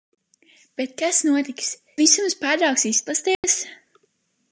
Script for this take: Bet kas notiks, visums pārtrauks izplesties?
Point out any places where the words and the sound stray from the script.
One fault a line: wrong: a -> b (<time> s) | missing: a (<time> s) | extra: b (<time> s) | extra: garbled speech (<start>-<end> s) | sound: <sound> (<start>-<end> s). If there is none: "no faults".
sound: dropout (3.3-3.4 s)